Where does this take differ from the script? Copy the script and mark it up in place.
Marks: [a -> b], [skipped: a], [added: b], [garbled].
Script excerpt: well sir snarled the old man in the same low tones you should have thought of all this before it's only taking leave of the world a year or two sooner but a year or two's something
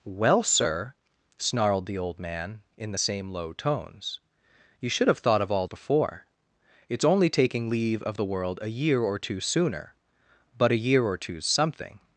well sir snarled the old man in the same low tones you should have thought of all [skipped: this] before it's only taking leave of the world a year or two sooner but a year or two's something